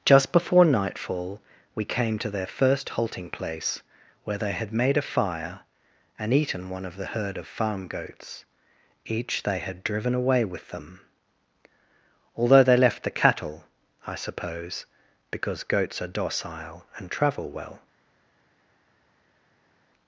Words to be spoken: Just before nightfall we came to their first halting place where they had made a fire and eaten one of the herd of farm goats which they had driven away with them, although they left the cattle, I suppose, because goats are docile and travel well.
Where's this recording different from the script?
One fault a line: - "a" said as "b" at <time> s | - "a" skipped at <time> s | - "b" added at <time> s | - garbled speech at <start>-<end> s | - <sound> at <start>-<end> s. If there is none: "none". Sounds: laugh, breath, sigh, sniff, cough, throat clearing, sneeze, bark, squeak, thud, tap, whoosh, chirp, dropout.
- "which" said as "each" at 9.0 s